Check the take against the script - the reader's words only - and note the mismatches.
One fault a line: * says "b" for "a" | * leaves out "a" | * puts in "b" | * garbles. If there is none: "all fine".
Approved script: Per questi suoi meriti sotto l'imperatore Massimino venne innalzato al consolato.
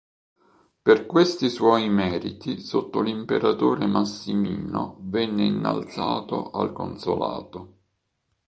all fine